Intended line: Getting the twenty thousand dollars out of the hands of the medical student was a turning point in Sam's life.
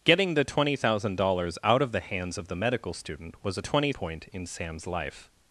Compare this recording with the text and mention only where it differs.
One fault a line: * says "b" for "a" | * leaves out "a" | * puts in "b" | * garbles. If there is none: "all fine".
* says "twenty" for "turning"